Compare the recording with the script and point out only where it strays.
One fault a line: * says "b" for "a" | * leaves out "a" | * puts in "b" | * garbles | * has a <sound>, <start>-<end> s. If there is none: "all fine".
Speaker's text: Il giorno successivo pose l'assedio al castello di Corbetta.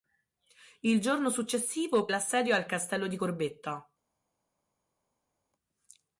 * leaves out "pose"